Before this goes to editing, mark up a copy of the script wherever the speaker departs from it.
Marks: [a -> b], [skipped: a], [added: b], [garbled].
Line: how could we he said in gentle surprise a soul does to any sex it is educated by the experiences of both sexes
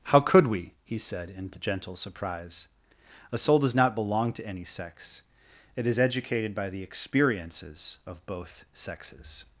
how could we he said in gentle surprise a soul does [added: not belong] to any sex it is educated by the experiences of both sexes